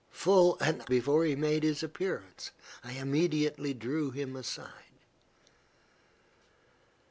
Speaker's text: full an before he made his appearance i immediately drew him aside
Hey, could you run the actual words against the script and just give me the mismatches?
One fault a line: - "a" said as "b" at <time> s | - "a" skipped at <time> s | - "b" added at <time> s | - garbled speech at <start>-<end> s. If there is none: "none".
none